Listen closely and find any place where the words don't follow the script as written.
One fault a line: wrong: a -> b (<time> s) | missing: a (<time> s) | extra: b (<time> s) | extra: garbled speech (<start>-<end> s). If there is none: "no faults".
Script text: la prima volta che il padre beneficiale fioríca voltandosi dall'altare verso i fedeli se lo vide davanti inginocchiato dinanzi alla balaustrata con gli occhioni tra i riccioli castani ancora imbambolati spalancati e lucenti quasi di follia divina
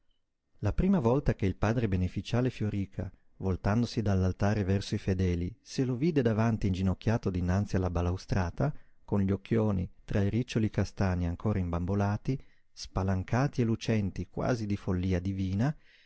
no faults